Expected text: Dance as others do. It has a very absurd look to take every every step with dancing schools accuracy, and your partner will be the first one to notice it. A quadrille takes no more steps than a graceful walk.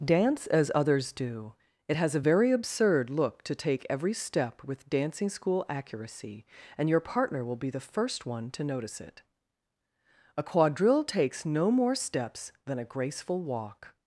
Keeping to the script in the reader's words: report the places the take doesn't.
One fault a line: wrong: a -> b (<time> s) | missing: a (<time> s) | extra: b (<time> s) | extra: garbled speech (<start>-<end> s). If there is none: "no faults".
missing: every (4.1 s)
wrong: schools -> school (5.3 s)